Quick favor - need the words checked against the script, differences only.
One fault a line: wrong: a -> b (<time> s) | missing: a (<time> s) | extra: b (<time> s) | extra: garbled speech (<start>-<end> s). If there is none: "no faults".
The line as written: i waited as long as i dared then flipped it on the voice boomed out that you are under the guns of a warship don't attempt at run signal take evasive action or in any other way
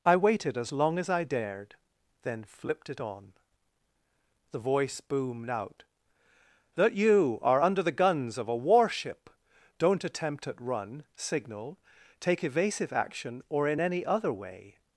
no faults